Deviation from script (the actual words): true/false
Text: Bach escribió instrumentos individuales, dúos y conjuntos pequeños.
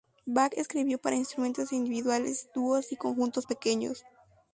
true